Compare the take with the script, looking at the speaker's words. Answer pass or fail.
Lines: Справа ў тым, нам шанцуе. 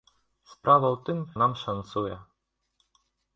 pass